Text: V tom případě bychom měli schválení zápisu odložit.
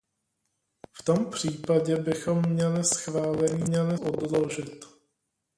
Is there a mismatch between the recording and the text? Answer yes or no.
yes